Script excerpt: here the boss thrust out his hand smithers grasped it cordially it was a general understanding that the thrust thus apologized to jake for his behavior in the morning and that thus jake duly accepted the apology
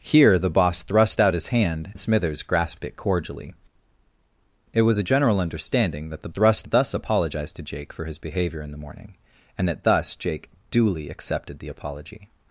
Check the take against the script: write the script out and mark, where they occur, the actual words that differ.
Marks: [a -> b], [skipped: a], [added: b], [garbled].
here the boss thrust out his hand smithers grasped it cordially it was a general understanding that the thrust thus apologized to jake for his behavior in the morning and that thus jake duly accepted the apology